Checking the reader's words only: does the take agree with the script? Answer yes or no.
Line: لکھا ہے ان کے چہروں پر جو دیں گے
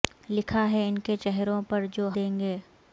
yes